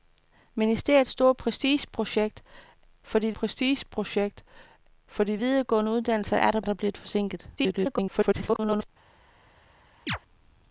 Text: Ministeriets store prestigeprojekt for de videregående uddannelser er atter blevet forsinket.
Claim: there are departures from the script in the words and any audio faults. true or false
true